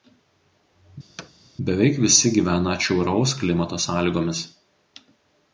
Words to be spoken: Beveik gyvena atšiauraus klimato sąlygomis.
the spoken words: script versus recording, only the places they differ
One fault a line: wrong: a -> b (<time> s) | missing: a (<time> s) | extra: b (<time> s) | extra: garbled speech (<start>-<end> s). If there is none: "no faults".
extra: visi (2.0 s)